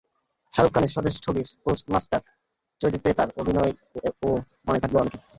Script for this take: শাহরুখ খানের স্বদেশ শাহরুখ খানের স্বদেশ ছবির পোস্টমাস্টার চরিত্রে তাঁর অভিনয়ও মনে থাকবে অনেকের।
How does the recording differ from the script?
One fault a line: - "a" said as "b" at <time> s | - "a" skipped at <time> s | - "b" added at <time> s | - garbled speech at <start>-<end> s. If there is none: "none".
- "শাহরুখ খানের স্বদেশ" skipped at 1.1 s